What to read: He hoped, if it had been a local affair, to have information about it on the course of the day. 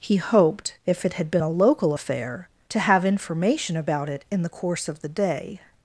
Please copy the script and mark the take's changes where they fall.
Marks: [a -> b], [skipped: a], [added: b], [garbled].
He hoped, if it had been a local affair, to have information about it [on -> in] the course of the day.